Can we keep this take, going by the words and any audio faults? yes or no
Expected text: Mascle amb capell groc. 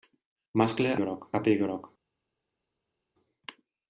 no